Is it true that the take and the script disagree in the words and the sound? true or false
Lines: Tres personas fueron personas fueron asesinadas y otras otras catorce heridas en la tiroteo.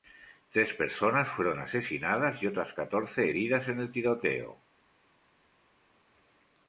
true